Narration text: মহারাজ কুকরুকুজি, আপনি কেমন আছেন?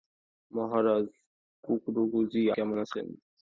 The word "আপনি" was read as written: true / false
false